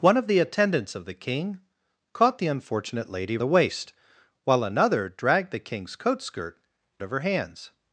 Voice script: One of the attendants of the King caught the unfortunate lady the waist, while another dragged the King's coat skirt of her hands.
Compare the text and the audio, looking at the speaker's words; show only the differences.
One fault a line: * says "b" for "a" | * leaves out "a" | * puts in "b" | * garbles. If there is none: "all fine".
all fine